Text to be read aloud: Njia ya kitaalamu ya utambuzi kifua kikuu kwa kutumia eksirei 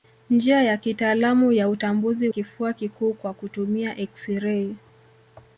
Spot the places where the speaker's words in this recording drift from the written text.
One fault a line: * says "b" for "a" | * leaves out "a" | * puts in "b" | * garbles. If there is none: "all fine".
all fine